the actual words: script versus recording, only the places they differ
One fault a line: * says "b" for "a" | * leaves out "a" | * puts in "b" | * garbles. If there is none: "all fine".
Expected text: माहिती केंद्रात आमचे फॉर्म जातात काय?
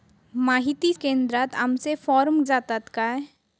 all fine